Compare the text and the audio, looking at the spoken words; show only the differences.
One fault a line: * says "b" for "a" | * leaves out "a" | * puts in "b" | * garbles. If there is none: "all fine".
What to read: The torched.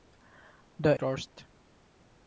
all fine